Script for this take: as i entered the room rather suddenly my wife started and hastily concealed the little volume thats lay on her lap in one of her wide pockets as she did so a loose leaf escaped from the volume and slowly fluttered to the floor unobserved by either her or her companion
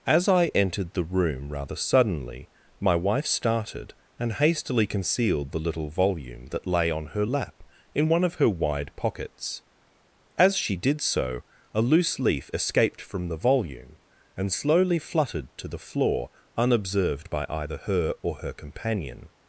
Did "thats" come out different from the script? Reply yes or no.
yes